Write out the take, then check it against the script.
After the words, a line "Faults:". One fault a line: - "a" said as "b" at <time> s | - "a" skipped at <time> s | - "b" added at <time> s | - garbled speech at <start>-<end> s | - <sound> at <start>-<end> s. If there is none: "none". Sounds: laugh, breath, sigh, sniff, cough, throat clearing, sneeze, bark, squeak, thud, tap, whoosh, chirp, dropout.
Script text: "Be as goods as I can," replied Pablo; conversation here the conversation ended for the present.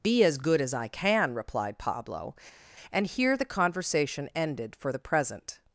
"Be as good as I can," replied Pablo; and here the conversation ended for the present.
Faults:
- "goods" said as "good" at 0.4 s
- "conversation" said as "and" at 2.9 s